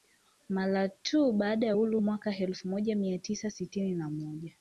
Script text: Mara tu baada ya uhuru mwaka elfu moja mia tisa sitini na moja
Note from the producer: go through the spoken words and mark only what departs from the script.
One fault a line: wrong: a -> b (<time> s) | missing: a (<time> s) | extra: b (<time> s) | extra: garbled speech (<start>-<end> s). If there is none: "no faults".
no faults